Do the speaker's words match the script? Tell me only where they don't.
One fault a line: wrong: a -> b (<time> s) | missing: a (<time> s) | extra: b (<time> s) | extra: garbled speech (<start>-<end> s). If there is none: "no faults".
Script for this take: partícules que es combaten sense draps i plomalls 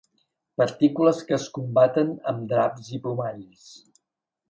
wrong: sense -> amb (2.3 s)